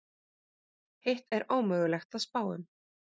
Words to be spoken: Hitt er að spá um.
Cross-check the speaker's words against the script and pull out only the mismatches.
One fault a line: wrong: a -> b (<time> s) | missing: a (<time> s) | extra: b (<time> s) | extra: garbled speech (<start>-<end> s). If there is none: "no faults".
extra: ómögulegt (1.6 s)